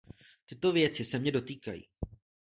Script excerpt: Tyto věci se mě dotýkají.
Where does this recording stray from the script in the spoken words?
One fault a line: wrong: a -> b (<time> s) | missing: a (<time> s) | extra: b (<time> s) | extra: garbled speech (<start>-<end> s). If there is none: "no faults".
no faults